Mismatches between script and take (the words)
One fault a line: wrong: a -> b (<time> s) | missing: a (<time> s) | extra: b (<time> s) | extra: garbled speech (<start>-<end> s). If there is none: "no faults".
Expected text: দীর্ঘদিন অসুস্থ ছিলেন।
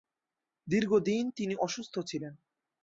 extra: তিনি (1.3 s)